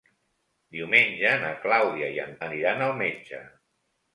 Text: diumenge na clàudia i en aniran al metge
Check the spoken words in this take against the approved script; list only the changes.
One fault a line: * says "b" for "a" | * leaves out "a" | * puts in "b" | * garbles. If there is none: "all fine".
all fine